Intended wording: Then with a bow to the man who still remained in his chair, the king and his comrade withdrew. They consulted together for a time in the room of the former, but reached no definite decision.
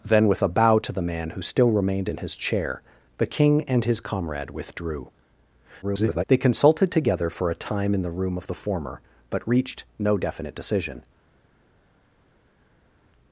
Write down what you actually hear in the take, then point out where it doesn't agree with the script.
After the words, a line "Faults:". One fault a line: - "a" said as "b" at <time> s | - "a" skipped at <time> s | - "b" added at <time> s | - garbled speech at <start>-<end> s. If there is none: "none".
Then with a bow to the man who still remained in his chair, the king and his comrade withdrew. [garbled] They consulted together for a time in the room of the former, but reached no definite decision.
Faults:
- garbled speech at 5.8-6.2 s